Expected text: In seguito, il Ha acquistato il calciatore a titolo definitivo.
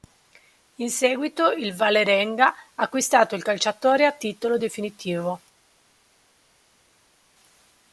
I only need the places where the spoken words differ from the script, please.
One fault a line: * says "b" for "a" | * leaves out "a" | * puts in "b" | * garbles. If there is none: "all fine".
* puts in "Vålerenga"